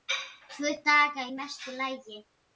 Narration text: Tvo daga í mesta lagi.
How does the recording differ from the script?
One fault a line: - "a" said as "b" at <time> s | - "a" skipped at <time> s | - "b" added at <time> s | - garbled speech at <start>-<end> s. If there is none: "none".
none